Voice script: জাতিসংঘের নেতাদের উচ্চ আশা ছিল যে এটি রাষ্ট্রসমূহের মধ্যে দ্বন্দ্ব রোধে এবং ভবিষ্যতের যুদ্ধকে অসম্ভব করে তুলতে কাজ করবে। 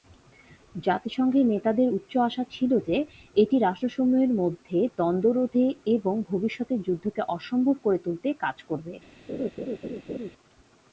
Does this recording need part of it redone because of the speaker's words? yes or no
no